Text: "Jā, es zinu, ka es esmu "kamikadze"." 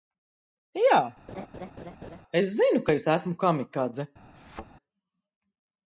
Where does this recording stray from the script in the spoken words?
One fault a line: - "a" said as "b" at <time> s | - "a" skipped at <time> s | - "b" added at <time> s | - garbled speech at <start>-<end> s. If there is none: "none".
none